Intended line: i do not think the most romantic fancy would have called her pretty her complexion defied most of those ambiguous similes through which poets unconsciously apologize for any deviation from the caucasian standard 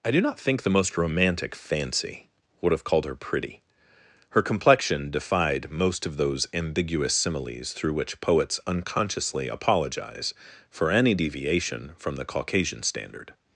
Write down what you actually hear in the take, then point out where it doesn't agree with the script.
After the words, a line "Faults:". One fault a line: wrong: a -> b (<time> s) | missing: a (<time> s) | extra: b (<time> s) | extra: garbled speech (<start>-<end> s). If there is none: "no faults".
i do not think the most romantic fancy would have called her pretty her complexion defied most of those ambiguous similes through which poets unconsciously apologize for any deviation from the caucasian standard
Faults:
no faults